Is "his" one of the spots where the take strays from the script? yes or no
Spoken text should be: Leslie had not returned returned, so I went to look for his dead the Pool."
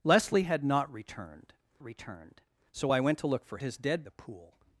no